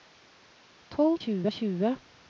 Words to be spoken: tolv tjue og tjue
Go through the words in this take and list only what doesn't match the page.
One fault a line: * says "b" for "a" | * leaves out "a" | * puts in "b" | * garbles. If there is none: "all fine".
all fine